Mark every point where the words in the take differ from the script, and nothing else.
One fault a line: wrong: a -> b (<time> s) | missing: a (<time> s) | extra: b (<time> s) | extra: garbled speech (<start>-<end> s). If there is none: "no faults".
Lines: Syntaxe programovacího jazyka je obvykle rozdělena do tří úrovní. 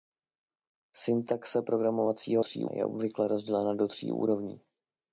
wrong: jazyka -> tří (2.4 s)